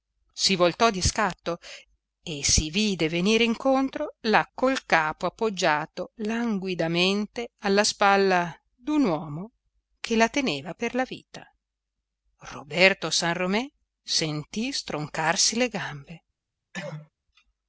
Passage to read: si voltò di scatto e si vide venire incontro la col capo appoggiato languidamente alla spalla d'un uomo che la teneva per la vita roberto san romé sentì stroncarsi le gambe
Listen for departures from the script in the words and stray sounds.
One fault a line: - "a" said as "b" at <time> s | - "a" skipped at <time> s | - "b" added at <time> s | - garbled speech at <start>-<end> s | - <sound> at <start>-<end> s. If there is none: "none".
- cough at 16.7-17.1 s